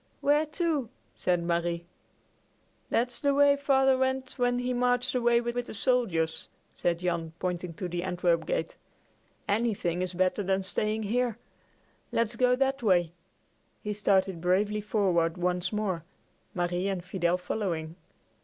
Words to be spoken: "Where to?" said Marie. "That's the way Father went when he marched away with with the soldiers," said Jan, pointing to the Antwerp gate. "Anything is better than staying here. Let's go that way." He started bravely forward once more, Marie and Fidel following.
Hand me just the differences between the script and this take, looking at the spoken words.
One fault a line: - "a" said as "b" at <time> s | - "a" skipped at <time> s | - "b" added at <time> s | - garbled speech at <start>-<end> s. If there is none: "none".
none